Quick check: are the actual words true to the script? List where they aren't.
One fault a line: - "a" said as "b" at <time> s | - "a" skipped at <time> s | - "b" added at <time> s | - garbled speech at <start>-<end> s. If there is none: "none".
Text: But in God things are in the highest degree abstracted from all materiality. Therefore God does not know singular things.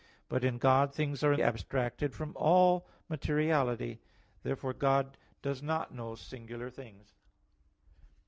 - "the highest degree" skipped at 1.4 s